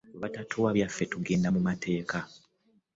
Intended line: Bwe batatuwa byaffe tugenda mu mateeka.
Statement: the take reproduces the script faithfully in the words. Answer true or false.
true